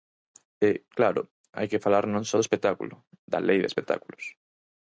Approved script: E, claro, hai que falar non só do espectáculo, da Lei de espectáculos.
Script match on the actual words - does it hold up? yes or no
yes